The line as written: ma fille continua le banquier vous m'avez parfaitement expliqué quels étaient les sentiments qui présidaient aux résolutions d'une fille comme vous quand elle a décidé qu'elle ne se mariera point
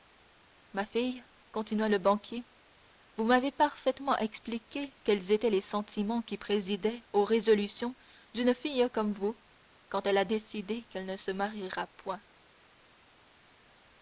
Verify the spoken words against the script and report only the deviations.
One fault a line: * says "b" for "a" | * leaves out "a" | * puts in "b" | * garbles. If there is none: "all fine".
all fine